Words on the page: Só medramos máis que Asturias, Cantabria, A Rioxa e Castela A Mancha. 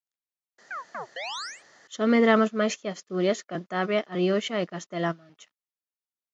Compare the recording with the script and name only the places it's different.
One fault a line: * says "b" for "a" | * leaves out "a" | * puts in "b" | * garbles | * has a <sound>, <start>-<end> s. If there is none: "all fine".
* has a chirp, 0.7-1.6 s